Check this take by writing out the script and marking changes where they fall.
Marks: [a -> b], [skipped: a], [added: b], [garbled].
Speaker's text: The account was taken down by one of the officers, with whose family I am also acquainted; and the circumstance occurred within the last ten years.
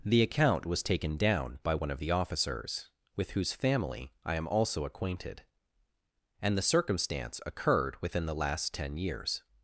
The account was taken down by one of the officers, with whose family I am also acquainted; and the circumstance occurred within the last ten years.